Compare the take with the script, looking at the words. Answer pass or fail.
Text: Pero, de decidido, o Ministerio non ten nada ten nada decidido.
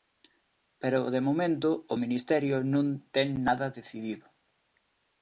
fail